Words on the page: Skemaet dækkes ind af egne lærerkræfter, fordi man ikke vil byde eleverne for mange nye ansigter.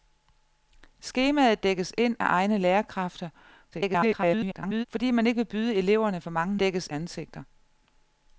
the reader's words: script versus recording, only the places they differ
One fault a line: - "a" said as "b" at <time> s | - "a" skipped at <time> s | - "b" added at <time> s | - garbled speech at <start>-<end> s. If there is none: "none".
- garbled speech at 3.7-4.9 s
- "nye" said as "dækkes" at 6.6 s